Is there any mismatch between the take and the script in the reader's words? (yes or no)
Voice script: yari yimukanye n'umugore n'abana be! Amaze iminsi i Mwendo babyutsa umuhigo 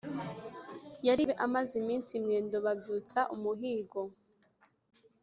yes